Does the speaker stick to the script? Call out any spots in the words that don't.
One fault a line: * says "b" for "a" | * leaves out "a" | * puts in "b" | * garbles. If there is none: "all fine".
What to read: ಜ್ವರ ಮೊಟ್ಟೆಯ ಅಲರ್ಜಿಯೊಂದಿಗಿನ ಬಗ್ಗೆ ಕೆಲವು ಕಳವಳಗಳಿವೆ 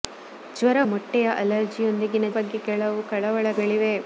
all fine